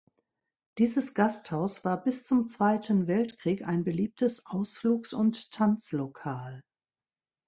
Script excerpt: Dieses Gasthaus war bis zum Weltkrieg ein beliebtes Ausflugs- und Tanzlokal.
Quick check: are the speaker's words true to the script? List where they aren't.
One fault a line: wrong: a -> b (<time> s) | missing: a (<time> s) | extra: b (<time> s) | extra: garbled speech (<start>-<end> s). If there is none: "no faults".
extra: Zweiten (2.5 s)